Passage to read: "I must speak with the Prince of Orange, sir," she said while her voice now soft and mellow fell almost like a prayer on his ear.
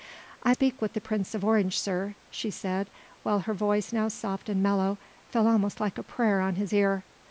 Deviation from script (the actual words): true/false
true